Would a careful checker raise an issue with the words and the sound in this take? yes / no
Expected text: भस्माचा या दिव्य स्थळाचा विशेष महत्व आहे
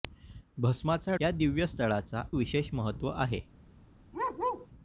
yes